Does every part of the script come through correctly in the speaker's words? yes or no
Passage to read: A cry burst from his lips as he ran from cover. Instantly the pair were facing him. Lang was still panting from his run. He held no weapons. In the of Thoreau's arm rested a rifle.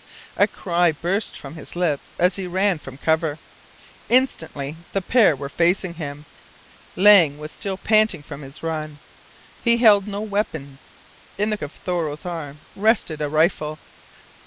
yes